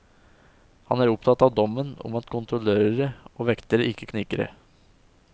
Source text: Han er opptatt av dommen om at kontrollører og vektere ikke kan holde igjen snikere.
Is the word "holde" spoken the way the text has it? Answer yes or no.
no